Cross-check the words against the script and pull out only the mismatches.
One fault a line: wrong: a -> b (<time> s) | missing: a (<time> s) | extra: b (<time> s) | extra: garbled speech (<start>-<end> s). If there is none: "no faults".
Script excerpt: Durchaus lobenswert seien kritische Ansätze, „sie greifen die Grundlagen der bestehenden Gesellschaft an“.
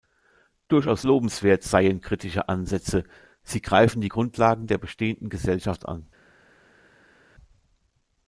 no faults